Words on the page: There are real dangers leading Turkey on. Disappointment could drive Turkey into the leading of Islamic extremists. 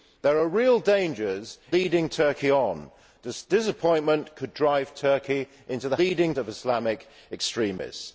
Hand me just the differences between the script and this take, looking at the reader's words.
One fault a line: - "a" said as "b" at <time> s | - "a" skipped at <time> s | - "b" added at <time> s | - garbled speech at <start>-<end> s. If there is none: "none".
none